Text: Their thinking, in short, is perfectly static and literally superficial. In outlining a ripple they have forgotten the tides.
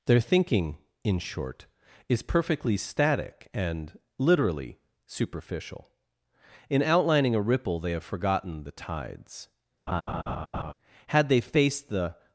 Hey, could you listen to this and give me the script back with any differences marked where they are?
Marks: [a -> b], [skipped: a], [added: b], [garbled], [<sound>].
Their thinking, in short, is perfectly static and literally superficial. In outlining a ripple they have forgotten the tides. [laugh] [added: Had they faced the]